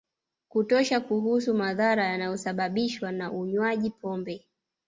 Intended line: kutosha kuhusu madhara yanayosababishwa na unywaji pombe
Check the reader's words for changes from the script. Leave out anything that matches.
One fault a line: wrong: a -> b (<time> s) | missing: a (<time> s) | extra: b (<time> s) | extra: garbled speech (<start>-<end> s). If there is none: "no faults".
no faults